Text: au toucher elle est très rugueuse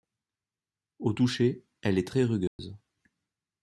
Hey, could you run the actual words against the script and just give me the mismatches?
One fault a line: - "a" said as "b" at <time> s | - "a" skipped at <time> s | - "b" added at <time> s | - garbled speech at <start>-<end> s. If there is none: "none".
none